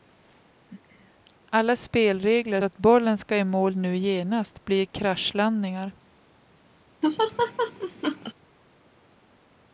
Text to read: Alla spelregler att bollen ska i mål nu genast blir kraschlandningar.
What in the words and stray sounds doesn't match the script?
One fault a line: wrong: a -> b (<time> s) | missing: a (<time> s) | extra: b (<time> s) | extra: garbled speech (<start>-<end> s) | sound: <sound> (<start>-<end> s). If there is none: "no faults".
sound: laugh (7.0-8.3 s)